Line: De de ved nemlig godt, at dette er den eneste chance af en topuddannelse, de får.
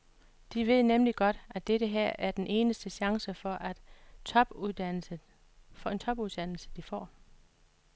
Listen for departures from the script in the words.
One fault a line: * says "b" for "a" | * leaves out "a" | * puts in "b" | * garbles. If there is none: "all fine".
* leaves out "de"
* puts in "her"
* says "for" for "af"